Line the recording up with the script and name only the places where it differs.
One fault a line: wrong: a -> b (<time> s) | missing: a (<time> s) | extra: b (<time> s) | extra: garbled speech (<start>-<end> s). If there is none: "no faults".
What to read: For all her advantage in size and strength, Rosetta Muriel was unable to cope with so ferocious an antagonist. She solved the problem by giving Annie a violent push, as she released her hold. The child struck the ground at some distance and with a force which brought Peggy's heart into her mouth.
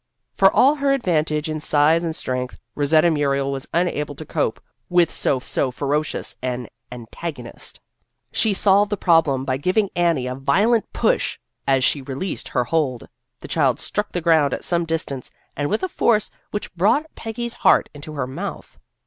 extra: so (5.4 s)